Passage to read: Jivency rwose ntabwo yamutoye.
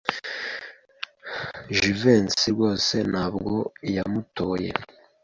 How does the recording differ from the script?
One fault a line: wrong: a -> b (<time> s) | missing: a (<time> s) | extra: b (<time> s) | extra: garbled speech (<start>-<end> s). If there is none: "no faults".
no faults